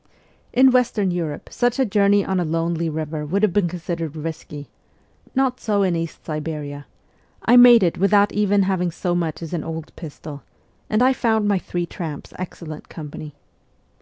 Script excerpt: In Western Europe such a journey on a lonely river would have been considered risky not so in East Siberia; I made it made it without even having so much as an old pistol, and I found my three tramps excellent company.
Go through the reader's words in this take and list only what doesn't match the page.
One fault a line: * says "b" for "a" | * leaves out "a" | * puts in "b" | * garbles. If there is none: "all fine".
* leaves out "made it"